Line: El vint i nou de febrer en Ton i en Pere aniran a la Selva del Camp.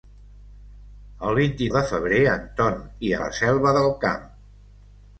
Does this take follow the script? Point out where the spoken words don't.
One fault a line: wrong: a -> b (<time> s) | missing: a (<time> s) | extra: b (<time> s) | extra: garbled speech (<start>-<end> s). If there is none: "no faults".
missing: nou (1.7 s)
missing: en Pere aniran (3.1 s)